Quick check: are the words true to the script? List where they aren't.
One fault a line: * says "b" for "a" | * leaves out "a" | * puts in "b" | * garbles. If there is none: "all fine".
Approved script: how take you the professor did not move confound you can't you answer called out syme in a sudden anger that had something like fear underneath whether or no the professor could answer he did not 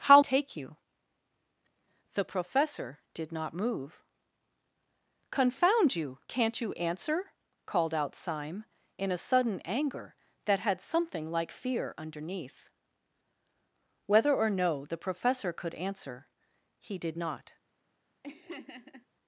all fine